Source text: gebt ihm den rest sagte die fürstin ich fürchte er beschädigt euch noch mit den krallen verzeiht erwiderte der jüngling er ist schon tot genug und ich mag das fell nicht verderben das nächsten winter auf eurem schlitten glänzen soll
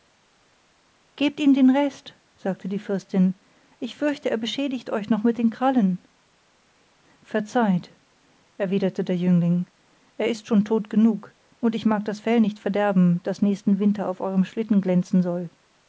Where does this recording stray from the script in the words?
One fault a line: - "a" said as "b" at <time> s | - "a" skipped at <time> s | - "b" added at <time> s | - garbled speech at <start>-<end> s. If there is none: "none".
none